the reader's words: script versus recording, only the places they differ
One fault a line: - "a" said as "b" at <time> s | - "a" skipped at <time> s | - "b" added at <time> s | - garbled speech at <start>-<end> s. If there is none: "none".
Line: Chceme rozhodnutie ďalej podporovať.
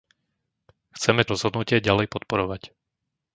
none